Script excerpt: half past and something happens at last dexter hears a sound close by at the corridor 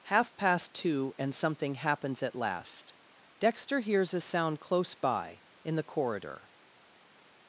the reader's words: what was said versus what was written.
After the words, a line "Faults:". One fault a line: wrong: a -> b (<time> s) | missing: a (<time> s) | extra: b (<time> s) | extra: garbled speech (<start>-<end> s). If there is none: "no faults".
half past two and something happens at last dexter hears a sound close by in the corridor
Faults:
extra: two (0.7 s)
wrong: at -> in (5.6 s)